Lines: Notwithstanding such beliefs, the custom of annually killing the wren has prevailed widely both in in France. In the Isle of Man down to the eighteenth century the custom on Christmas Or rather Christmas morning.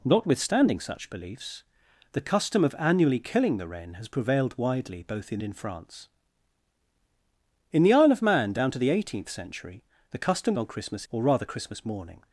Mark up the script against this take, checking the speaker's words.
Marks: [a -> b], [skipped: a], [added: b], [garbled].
Notwithstanding such beliefs, the custom of annually killing the wren has prevailed widely both in in France. In the Isle of Man down to the eighteenth century the custom on Christmas Or rather Christmas morning.